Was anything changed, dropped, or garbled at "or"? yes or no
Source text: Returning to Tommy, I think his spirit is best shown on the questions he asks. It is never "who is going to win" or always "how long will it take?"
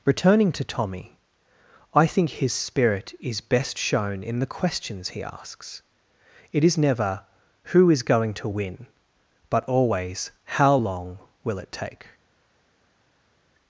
yes